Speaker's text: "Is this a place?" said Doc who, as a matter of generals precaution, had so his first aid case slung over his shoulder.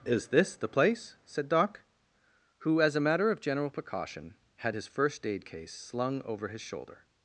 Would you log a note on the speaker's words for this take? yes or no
yes